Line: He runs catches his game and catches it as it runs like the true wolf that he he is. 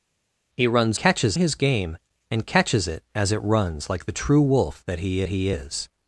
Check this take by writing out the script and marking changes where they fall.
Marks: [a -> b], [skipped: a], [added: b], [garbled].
He runs catches his game and catches it as it runs like the true wolf that he he is.